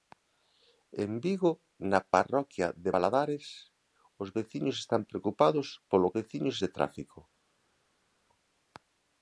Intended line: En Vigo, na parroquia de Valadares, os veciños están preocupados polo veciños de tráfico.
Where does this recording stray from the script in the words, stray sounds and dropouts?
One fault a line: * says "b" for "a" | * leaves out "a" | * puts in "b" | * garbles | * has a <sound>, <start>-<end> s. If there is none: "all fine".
all fine